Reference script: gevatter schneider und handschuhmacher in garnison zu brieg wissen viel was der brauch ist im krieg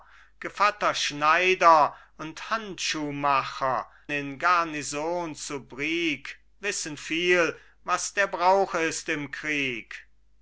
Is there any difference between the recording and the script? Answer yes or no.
no